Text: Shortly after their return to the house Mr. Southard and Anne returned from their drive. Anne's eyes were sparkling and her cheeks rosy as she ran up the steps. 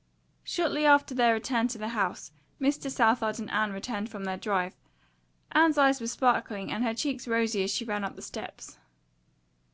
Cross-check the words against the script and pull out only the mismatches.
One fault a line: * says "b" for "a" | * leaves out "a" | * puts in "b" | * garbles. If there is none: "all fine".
all fine